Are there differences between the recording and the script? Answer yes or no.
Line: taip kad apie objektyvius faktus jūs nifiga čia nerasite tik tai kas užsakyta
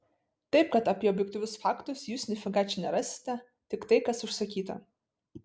no